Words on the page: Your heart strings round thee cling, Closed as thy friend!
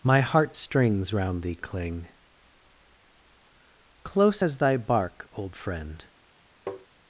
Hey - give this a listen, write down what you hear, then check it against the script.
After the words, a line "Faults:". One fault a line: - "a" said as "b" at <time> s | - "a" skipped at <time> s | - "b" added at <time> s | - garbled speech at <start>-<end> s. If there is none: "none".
My heart strings round thee cling, Close as thy bark, old friend!
Faults:
- "Your" said as "My" at 0.0 s
- "Closed" said as "Close" at 4.0 s
- "bark old" added at 4.8 s